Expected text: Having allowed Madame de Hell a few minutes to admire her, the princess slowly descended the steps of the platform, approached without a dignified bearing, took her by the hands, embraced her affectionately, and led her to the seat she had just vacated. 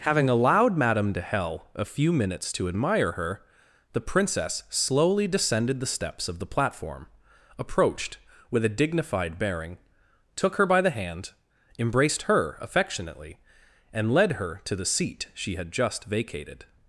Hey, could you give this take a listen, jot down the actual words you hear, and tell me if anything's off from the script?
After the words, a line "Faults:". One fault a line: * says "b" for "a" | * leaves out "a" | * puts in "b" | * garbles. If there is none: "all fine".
Having allowed Madame de Hell a few minutes to admire her, the princess slowly descended the steps of the platform, approached with a dignified bearing, took her by the hand, embraced her affectionately, and led her to the seat she had just vacated.
Faults:
* says "with" for "without"
* says "hand" for "hands"